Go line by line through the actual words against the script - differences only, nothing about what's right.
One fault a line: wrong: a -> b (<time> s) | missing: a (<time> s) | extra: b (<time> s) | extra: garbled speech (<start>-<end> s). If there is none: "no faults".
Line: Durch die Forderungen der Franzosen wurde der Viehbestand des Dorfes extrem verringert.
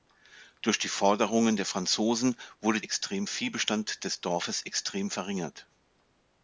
wrong: der -> extrem (2.8 s)